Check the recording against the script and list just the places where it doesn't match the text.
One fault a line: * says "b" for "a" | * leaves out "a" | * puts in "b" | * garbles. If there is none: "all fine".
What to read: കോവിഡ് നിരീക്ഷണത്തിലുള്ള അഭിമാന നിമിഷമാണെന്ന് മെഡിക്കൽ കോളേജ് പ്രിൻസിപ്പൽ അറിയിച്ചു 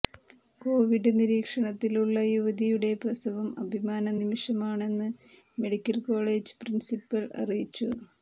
* puts in "യുവതിയുടെ പ്രസവം"